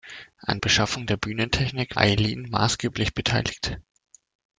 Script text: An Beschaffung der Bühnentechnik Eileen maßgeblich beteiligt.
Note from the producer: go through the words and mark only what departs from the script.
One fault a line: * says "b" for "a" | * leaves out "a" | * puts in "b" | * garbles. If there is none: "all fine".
all fine